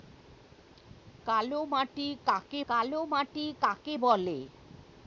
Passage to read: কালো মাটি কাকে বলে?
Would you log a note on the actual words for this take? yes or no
yes